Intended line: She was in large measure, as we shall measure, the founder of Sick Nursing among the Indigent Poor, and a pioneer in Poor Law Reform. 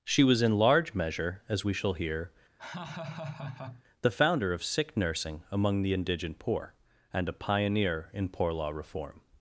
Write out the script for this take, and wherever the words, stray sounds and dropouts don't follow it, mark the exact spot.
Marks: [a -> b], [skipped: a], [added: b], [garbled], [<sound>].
She was in large measure, as we shall [measure, -> hear] [laugh] the founder of Sick Nursing among the Indigent Poor, and a pioneer in Poor Law Reform.